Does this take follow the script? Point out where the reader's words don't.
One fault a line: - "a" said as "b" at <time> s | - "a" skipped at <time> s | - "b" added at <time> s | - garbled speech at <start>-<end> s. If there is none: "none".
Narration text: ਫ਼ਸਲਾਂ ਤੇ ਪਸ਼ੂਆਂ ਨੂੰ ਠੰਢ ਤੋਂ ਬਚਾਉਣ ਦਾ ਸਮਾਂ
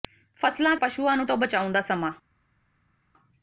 - "ਤੇ" skipped at 0.8 s
- "ਠੰਢ" skipped at 1.3 s